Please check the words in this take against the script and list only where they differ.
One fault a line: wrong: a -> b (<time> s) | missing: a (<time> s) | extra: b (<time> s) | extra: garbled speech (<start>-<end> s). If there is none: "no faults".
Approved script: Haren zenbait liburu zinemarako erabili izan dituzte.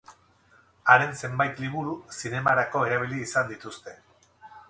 no faults